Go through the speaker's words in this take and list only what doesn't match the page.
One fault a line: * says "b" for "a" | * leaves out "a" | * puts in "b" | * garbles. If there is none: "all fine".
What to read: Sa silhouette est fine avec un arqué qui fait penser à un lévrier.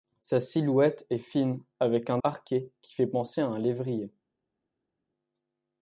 all fine